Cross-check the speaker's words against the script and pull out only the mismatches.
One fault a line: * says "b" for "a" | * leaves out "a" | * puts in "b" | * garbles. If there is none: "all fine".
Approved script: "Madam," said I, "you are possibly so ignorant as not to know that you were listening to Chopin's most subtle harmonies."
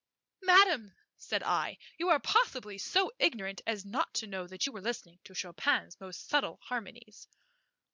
all fine